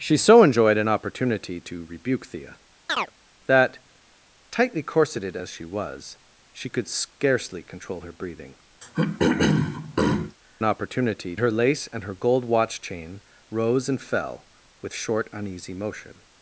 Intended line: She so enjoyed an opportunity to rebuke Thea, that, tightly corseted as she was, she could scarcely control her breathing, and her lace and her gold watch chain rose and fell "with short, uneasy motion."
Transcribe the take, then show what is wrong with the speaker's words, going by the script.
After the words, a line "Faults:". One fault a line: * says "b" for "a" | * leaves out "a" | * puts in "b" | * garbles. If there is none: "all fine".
She so enjoyed an opportunity to rebuke Thea, that, tightly corseted as she was, she could scarcely control her breathing, opportunity her lace and her gold watch chain rose and fell "with short, uneasy motion."
Faults:
* says "opportunity" for "and"